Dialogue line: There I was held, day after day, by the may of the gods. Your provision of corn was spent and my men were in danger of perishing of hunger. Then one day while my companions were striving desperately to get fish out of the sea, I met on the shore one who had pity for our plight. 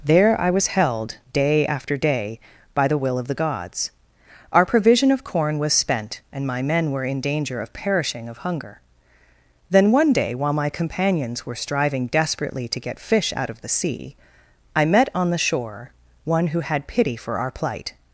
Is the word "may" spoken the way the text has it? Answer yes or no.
no